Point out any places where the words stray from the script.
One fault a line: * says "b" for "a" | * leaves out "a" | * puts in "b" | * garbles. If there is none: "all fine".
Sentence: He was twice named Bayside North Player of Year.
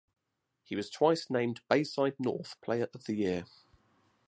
* puts in "the"